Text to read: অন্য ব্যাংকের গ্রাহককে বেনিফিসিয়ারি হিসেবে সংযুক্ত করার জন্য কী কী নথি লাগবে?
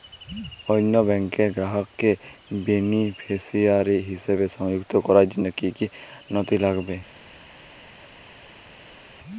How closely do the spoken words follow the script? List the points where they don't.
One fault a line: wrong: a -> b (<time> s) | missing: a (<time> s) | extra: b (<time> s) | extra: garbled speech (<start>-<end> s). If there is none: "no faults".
no faults